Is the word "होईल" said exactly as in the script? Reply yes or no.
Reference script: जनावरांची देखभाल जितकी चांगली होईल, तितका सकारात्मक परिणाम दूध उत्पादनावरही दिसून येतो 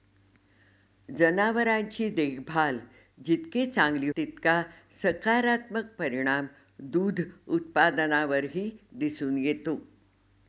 no